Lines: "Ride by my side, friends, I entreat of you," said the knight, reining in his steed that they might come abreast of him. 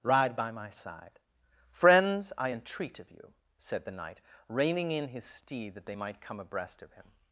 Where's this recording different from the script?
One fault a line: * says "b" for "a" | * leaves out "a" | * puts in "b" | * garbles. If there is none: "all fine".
all fine